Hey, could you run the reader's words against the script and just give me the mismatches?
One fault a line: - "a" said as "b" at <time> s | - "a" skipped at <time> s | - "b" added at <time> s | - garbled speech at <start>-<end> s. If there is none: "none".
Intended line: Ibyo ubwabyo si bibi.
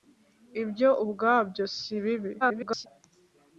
- garbled speech at 2.4-2.9 s